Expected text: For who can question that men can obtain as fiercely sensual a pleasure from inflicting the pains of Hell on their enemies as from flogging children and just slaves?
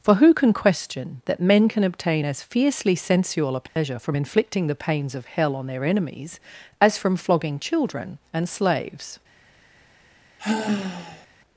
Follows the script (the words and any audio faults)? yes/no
no